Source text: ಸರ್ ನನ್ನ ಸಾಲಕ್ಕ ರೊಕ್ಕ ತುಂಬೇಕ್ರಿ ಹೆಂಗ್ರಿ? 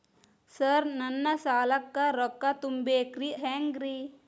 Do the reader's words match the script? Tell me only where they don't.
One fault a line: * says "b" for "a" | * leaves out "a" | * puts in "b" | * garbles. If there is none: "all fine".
all fine